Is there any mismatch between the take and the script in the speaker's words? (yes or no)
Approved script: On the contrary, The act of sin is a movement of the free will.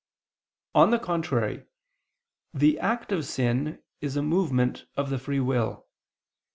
no